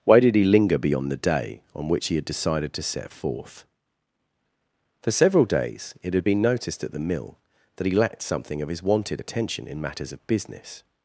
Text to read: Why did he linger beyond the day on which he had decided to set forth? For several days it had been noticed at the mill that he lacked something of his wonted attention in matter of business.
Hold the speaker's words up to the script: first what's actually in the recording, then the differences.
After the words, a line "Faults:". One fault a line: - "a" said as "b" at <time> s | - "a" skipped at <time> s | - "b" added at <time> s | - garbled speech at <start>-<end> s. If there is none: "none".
Why did he linger beyond the day on which he had decided to set forth? For several days it had been noticed at the mill that he lacked something of his wonted attention in matters of business.
Faults:
- "matter" said as "matters" at 9.8 s